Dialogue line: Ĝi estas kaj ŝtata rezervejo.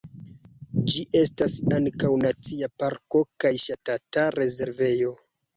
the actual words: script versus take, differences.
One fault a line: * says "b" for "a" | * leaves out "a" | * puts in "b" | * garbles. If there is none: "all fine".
* puts in "ankaŭ nacia parko"